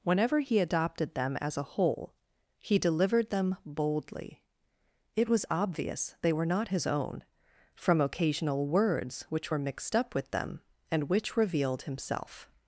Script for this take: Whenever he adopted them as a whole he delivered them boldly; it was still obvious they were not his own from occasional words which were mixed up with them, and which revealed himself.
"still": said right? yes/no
no